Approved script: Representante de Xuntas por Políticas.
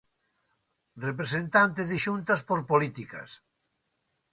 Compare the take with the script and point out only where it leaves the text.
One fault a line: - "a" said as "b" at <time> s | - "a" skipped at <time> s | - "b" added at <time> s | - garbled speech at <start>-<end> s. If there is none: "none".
none